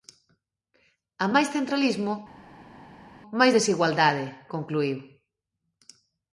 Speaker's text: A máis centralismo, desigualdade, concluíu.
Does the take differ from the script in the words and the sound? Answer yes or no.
yes